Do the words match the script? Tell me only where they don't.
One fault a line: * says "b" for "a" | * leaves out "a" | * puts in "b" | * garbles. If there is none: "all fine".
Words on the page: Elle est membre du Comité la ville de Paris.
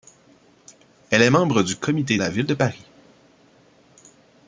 all fine